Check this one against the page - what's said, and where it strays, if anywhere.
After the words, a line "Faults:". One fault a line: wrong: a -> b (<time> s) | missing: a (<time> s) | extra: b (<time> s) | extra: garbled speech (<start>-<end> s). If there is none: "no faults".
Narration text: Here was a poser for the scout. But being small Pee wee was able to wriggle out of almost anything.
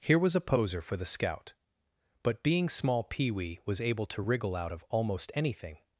Here was a poser for the scout. But being small Pee wee was able to wriggle out of almost anything.
Faults:
no faults